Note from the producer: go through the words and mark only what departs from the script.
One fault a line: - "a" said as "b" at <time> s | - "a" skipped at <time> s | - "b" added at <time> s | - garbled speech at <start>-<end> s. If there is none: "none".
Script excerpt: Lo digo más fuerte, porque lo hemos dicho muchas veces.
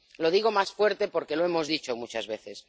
none